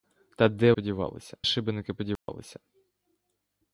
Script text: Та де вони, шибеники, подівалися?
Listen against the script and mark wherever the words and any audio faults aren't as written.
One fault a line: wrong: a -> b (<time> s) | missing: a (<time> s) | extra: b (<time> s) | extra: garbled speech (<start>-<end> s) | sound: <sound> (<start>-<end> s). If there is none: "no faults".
wrong: вони -> подівалися (0.7 s)
sound: dropout (2.2-2.3 s)